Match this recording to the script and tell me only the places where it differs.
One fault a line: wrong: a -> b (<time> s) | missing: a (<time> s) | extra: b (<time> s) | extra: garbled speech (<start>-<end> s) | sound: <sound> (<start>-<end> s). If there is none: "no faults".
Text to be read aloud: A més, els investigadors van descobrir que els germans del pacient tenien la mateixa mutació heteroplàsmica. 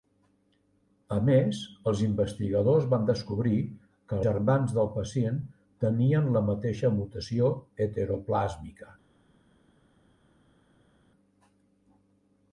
missing: els (4.2 s)